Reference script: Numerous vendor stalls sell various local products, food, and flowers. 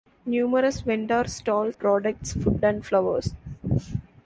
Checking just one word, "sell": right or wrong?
wrong